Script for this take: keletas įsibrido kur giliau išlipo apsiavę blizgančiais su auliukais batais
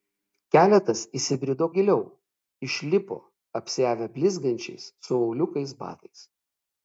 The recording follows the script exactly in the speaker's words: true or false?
false